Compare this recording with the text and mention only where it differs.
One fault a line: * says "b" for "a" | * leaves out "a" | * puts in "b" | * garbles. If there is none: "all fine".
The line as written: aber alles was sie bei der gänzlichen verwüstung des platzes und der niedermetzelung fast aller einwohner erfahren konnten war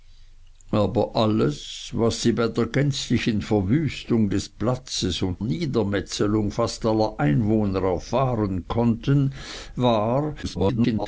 * leaves out "der"
* garbles